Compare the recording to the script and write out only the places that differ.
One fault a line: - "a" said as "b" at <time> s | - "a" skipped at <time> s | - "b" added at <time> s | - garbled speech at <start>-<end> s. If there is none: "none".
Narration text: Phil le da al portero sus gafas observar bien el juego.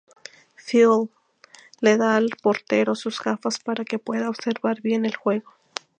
- "para que pueda" added at 3.6 s